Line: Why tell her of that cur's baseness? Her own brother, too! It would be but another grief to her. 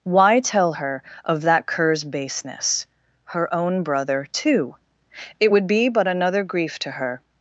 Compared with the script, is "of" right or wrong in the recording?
right